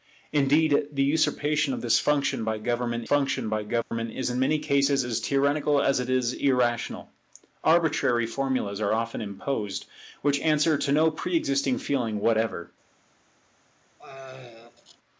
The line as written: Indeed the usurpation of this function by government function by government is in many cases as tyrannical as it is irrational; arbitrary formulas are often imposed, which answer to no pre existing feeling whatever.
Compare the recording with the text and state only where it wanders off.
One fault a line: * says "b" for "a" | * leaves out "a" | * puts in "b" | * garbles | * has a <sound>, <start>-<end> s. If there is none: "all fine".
* has a dropout, 3.8-3.9 s
* has a throat clearing, 14.0-15.0 s